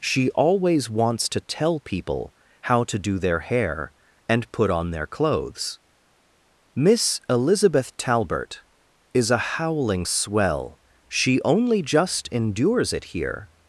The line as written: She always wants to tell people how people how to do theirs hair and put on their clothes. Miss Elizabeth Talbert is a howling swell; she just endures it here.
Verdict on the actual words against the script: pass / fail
fail